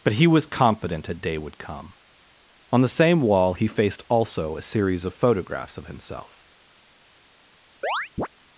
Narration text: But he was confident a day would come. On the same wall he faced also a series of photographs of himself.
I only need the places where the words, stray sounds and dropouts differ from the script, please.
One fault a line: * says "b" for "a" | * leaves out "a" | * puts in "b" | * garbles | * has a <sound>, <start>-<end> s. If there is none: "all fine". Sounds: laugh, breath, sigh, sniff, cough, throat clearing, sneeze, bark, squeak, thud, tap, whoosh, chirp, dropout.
* has a chirp, 7.8-8.3 s